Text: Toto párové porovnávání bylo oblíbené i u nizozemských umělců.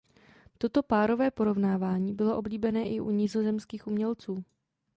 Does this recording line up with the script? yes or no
yes